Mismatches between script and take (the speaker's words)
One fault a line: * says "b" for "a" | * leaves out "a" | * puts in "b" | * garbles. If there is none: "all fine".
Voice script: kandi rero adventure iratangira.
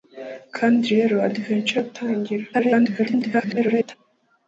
* garbles